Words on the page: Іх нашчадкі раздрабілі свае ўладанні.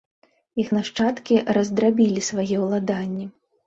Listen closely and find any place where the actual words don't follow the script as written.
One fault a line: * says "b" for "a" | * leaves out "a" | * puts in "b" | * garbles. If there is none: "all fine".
all fine